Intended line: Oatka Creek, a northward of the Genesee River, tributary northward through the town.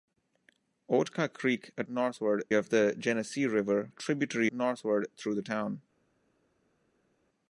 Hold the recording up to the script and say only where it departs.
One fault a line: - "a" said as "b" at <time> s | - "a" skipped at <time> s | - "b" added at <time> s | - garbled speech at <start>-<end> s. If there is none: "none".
none